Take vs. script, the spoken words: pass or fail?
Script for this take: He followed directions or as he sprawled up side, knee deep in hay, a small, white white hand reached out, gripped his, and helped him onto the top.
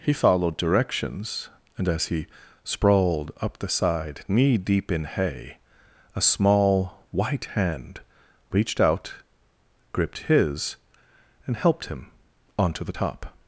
fail